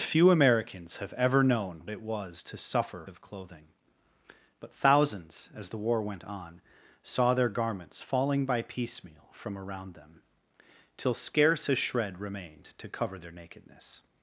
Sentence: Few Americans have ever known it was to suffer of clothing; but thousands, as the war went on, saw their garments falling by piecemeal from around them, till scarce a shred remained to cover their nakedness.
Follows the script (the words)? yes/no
yes